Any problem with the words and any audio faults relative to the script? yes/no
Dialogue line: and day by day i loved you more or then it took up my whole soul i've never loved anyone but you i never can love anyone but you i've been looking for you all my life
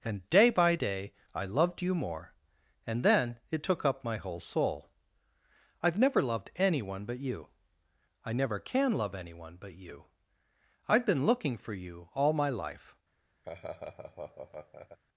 yes